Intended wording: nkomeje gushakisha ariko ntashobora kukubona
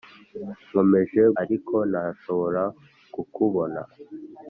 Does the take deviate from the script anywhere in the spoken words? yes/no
yes